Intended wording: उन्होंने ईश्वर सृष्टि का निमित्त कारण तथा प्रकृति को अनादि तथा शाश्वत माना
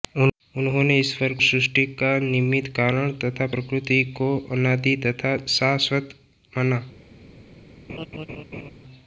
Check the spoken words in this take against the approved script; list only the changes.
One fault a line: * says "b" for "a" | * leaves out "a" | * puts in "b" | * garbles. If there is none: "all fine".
all fine